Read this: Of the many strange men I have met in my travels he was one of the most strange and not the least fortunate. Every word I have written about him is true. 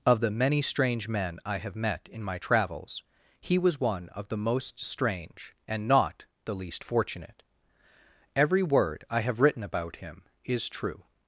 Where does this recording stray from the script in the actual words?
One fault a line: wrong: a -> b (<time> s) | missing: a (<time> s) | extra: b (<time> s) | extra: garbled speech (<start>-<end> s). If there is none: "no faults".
no faults